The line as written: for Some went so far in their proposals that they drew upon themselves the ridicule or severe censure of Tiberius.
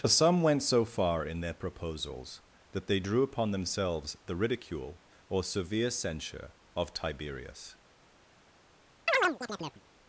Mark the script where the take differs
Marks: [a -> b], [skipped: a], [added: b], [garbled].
for Some went so far in their proposals that they drew upon themselves the ridicule or severe censure of Tiberius.